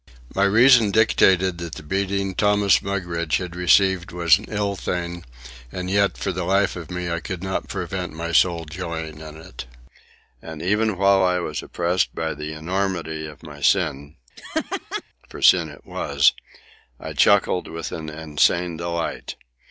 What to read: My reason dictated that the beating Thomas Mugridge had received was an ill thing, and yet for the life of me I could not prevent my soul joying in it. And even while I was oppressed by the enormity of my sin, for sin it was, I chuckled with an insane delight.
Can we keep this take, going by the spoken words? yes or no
yes